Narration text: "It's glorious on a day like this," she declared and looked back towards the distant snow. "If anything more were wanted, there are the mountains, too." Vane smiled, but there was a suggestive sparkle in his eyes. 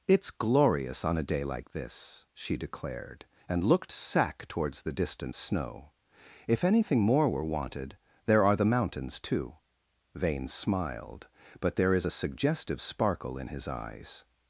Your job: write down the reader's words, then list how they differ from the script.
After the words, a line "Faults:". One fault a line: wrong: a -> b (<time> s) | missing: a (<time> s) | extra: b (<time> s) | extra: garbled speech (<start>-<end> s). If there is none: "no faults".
"It's glorious on a day like this," she declared and looked sack towards the distant snow. "If anything more were wanted, there are the mountains, too." Vane smiled, but there is a suggestive sparkle in his eyes.
Faults:
wrong: back -> sack (3.9 s)
wrong: was -> is (11.9 s)